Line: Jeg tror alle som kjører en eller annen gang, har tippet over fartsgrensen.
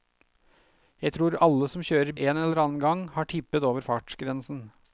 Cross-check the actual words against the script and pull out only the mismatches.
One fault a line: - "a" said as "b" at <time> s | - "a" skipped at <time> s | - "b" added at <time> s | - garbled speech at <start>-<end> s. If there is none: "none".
none